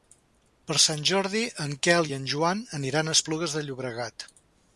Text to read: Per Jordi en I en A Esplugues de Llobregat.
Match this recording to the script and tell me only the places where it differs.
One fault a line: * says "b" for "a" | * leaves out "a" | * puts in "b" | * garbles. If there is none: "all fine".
* puts in "Sant"
* puts in "Quel"
* puts in "Joan aniran"